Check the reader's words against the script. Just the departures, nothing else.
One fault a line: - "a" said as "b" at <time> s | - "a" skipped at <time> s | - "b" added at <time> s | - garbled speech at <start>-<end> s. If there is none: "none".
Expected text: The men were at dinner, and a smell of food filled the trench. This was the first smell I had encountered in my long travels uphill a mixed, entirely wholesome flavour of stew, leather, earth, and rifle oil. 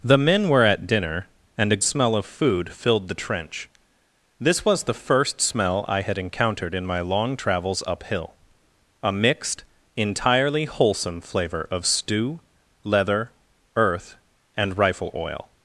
none